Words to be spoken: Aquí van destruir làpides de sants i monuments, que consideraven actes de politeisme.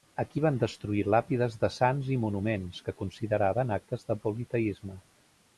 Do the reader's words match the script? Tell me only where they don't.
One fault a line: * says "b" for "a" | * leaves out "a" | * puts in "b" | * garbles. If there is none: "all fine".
all fine